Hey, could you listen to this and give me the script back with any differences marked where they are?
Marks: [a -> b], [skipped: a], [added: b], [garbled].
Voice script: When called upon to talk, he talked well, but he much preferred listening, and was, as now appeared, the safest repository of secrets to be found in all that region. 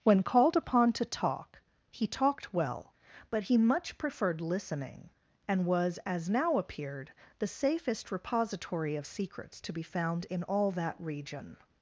When called upon to talk, he talked well, but he much preferred listening, and was, as now appeared, the safest repository of secrets to be found in all that region.